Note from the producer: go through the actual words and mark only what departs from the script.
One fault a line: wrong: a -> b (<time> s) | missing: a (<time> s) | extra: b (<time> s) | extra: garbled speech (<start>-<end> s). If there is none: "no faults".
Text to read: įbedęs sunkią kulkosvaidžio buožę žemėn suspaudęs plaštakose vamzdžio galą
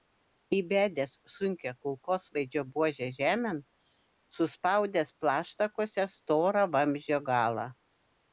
extra: storą (6.2 s)